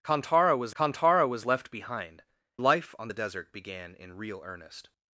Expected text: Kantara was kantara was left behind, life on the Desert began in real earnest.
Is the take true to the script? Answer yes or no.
yes